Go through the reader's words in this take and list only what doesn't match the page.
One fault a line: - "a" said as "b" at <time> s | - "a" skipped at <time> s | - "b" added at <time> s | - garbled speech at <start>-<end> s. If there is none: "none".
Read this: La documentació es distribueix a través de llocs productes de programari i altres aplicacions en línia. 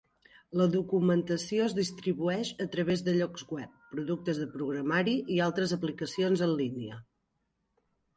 - "web" added at 3.6 s